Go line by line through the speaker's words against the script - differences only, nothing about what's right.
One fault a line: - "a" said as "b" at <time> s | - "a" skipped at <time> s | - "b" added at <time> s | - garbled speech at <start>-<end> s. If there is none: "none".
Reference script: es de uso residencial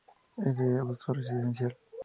none